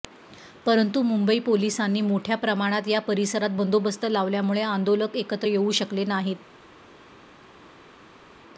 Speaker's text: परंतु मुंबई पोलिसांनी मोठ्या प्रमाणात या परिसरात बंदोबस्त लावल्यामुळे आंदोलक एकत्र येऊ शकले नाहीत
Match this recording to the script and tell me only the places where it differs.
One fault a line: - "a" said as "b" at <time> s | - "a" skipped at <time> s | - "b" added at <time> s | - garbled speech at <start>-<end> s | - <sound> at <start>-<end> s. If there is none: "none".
none